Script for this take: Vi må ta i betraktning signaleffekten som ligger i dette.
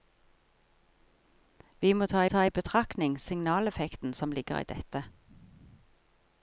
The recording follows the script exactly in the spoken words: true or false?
false